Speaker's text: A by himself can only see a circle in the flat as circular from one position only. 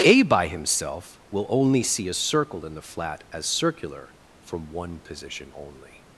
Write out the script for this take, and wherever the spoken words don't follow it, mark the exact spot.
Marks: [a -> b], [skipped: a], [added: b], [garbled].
A by himself [can -> will] only see a circle in the flat as circular from one position only.